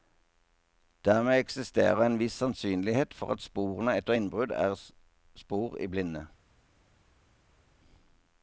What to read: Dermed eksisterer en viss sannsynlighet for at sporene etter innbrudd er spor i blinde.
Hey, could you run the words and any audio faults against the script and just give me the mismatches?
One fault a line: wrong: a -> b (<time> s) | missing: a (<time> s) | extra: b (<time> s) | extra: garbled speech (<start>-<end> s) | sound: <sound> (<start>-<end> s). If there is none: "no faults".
no faults